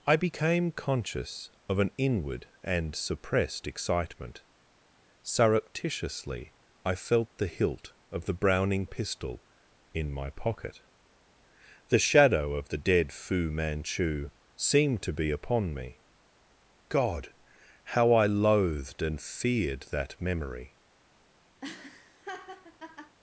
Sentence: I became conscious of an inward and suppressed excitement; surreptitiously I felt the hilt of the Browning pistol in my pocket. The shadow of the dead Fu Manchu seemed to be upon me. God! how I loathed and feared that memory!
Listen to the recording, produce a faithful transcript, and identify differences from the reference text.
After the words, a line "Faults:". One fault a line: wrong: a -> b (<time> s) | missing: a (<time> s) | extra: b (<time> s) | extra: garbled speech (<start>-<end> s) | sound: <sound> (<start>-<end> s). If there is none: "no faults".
I became conscious of an inward and suppressed excitement; surreptitiously I felt the hilt of the Browning pistol in my pocket. The shadow of the dead Fu Manchu seemed to be upon me. God! how I loathed and feared that memory!
Faults:
sound: laugh (21.6-23.2 s)